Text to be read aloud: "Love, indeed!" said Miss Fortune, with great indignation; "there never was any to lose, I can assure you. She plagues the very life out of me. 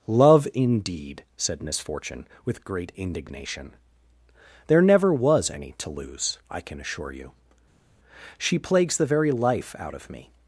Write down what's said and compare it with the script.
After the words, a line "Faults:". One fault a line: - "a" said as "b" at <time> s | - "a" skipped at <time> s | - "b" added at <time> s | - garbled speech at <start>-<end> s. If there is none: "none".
"Love, indeed!" said Miss Fortune, with great indignation; "there never was any to lose, I can assure you. She plagues the very life out of me.
Faults:
none